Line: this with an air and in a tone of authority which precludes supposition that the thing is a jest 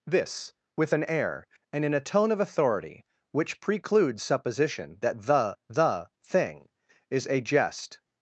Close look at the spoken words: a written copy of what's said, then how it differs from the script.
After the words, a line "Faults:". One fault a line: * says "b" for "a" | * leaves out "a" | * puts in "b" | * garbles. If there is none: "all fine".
this with an air and in a tone of authority which precludes supposition that the the thing is a jest
Faults:
* puts in "the"